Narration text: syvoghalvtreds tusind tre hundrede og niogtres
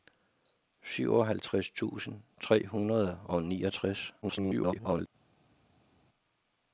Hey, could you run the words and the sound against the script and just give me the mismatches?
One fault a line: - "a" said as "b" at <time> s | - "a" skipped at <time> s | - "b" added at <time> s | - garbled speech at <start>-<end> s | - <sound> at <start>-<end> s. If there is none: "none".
- garbled speech at 4.2-5.1 s